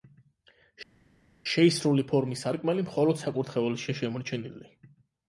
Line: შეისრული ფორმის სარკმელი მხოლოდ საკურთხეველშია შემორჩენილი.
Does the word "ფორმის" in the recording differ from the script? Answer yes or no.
no